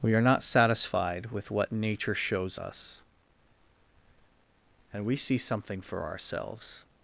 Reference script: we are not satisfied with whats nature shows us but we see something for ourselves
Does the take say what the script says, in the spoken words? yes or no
no